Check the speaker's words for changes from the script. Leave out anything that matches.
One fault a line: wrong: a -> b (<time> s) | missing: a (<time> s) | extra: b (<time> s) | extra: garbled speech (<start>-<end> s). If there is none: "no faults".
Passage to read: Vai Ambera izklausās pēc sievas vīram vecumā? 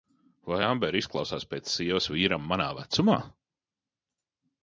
extra: manā (2.5 s)